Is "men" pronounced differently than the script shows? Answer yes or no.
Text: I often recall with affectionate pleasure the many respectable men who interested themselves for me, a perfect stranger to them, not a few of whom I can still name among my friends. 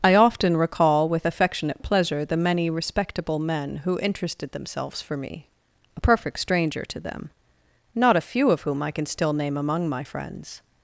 no